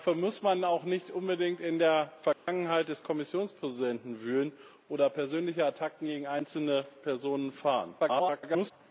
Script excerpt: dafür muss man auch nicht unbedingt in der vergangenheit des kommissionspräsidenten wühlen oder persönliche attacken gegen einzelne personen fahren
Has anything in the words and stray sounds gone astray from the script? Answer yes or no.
yes